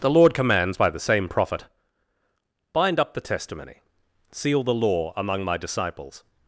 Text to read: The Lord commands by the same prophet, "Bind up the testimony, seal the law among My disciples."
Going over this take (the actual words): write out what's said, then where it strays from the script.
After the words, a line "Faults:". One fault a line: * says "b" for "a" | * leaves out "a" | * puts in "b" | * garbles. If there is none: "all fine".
The Lord commands by the same prophet, "Bind up the testimony, seal the law among My disciples."
Faults:
all fine